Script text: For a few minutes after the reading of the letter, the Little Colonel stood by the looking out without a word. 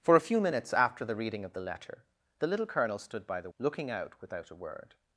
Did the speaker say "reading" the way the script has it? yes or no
yes